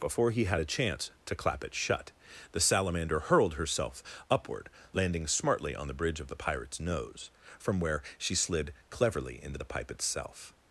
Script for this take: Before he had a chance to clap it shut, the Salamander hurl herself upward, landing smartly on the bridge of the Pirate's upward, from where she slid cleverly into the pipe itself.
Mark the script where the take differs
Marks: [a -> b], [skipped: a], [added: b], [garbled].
Before he had a chance to clap it shut, the Salamander [hurl -> hurled] herself upward, landing smartly on the bridge of the Pirate's [upward, -> nose] from where she slid cleverly into the pipe itself.